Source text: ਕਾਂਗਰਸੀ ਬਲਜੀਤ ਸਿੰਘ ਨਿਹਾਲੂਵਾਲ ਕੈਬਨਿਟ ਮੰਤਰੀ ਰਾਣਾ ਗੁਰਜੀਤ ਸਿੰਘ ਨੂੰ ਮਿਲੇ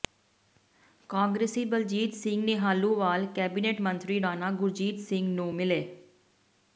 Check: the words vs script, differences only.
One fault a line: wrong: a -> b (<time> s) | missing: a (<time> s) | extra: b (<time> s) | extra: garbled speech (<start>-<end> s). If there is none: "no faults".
no faults